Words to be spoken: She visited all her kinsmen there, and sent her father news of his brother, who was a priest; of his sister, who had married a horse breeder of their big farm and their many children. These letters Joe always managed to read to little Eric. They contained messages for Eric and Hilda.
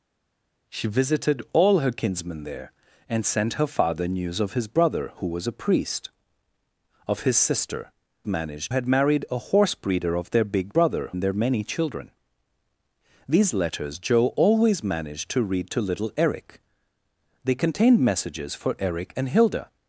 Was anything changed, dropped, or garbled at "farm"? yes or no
yes